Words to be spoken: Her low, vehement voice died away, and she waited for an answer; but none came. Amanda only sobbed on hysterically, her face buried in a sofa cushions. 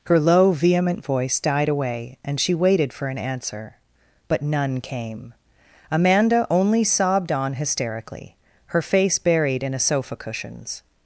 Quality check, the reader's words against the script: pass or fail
pass